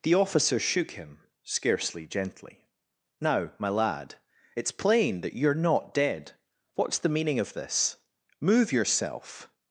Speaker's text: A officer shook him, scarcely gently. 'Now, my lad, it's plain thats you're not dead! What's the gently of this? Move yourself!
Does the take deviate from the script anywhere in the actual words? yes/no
yes